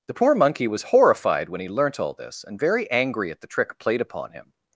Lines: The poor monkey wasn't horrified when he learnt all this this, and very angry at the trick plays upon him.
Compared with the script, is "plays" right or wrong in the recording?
wrong